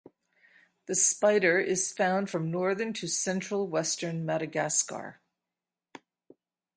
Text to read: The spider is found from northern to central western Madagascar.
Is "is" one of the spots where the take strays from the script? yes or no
no